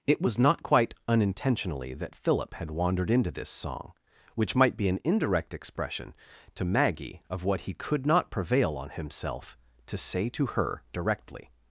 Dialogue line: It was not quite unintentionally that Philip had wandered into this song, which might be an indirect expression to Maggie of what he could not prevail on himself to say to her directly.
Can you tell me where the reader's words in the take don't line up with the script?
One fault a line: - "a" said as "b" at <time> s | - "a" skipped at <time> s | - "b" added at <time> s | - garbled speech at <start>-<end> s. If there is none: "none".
none